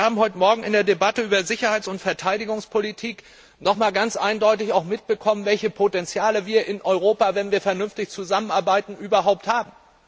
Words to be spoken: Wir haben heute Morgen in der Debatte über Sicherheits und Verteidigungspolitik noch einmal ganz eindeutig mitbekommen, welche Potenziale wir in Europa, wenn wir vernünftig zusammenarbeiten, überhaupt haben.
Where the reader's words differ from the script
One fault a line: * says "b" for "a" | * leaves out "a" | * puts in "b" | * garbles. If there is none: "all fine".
all fine